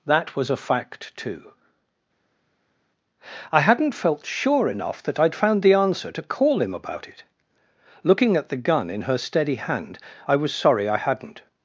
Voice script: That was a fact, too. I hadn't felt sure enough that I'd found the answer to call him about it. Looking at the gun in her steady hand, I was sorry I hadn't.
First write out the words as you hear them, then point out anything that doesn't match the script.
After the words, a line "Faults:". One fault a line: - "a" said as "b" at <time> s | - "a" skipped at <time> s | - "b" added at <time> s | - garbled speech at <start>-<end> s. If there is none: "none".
That was a fact, too. I hadn't felt sure enough that I'd found the answer to call him about it. Looking at the gun in her steady hand, I was sorry I hadn't.
Faults:
none